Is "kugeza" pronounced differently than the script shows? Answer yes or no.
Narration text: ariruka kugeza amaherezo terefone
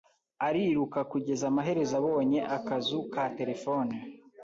no